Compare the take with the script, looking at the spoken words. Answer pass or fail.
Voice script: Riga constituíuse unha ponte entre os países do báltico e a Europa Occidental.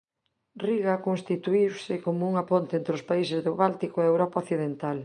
fail